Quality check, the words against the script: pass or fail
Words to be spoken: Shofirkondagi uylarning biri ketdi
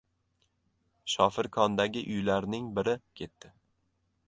pass